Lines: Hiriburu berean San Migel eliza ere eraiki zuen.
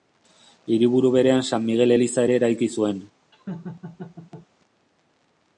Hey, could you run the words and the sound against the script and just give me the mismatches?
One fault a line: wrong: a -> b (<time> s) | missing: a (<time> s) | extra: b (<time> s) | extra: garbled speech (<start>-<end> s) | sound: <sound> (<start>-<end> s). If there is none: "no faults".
sound: laugh (3.3-4.5 s)